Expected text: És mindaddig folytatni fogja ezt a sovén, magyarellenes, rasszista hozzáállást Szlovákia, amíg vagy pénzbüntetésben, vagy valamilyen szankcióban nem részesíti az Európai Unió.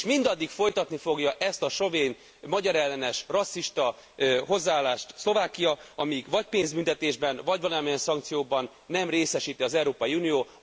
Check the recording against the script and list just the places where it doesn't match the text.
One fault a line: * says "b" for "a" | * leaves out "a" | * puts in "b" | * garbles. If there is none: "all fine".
all fine